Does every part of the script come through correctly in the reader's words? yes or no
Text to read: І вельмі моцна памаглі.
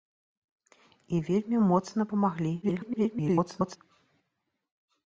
no